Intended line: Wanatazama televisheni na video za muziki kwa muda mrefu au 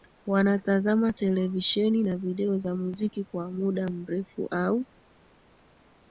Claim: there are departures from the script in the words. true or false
false